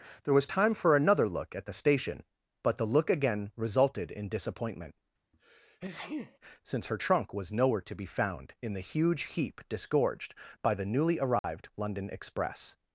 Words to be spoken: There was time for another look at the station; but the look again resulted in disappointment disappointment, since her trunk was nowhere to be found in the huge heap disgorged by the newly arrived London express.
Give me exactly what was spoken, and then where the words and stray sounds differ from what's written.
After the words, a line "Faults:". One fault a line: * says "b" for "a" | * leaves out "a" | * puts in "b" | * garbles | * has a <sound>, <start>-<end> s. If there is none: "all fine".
There was time for another look at the station; but the look again resulted in disappointment, since her trunk was nowhere to be found in the huge heap disgorged by the newly arrived London express.
Faults:
* leaves out "disappointment"
* has a sneeze, 5.3-6.4 s
* has a dropout, 11.4-11.4 s